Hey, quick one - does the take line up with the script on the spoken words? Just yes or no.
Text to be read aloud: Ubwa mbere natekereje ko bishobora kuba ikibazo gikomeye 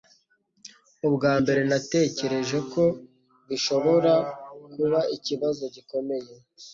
yes